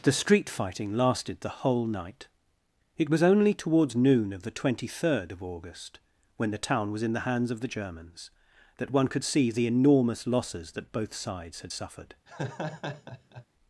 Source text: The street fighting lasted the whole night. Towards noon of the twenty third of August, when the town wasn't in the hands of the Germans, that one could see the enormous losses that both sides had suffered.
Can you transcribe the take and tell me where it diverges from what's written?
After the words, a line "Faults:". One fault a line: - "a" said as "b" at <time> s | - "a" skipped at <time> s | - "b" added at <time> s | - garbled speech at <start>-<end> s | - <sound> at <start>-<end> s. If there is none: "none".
The street fighting lasted the whole night. It was only towards noon of the twenty third of August, when the town was in the hands of the Germans, that one could see the enormous losses that both sides had suffered.
Faults:
- "It was only" added at 3.0 s
- "wasn't" said as "was" at 6.9 s
- laugh at 12.3-13.5 s